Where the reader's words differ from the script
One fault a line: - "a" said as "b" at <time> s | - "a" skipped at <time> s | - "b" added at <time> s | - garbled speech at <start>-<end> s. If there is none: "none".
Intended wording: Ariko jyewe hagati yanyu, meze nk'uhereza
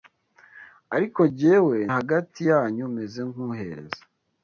none